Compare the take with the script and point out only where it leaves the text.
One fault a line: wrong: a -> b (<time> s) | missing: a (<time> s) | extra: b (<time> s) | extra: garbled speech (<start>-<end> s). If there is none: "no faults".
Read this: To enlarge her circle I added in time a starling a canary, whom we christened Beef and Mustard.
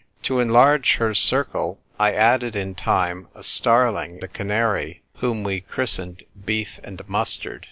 no faults